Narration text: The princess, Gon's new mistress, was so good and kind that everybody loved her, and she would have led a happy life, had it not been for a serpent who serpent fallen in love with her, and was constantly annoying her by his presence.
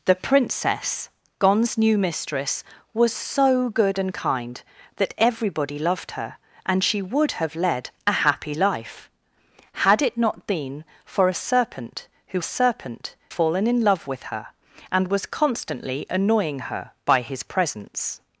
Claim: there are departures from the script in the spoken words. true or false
false